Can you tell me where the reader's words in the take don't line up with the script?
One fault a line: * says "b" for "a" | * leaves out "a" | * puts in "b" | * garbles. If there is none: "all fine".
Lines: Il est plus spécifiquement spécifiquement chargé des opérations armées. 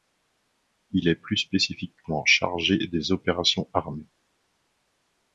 * leaves out "spécifiquement"